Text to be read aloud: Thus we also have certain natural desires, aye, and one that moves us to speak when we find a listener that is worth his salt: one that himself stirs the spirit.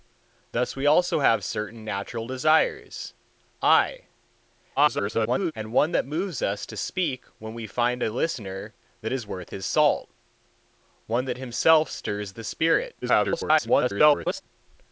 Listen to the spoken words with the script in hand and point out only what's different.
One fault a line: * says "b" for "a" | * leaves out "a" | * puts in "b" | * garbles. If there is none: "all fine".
* garbles
* garbles